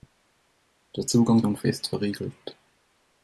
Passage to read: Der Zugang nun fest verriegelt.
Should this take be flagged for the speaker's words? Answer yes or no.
no